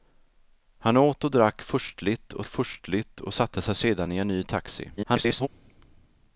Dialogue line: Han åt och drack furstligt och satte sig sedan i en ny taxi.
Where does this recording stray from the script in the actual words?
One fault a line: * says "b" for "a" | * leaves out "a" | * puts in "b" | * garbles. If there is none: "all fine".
* puts in "furstligt och"
* garbles